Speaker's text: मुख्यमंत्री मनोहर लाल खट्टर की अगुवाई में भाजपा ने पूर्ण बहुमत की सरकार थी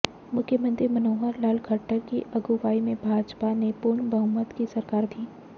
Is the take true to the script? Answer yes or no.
yes